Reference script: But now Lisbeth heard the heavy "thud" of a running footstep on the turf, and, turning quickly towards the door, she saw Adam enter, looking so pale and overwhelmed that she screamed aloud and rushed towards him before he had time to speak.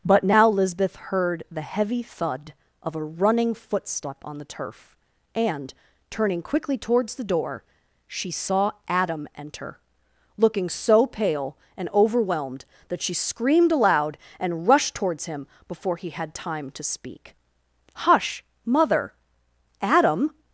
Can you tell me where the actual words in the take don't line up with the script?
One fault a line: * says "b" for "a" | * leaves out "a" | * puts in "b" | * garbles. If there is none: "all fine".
* puts in "Hush Mother Adam"